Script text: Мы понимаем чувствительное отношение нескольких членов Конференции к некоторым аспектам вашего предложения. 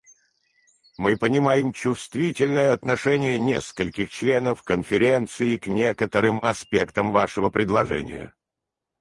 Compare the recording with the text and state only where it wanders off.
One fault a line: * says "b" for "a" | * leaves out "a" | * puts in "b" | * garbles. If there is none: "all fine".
all fine